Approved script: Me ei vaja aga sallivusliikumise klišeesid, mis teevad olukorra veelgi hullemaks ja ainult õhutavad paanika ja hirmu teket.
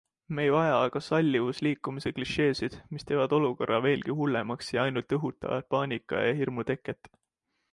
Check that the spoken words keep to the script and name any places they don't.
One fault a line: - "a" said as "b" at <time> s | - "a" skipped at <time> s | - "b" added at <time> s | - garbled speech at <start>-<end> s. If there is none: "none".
none